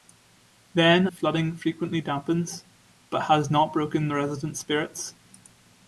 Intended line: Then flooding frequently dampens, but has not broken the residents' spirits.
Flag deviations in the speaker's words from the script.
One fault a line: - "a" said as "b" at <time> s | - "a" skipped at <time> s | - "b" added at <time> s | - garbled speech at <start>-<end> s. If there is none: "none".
none